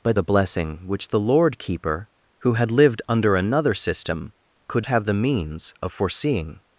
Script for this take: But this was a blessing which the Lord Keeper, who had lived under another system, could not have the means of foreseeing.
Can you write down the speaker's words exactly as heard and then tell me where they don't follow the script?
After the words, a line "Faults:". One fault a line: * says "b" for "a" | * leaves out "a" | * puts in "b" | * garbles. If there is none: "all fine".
But a blessing which the Lord Keeper, who had lived under another system, could have the means of foreseeing.
Faults:
* leaves out "this was"
* leaves out "not"